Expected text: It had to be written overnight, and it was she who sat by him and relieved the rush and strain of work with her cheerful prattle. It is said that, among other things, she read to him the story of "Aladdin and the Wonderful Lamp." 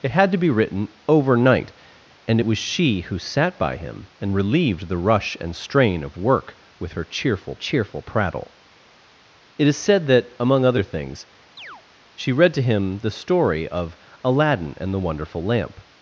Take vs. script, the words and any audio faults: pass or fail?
fail